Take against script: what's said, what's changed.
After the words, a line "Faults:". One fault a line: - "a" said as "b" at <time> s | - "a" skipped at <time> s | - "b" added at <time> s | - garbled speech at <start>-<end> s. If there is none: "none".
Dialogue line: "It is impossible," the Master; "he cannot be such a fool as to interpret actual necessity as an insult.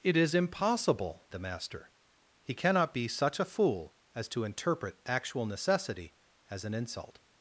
"It is impossible," the Master; "he cannot be such a fool as to interpret actual necessity as an insult.
Faults:
none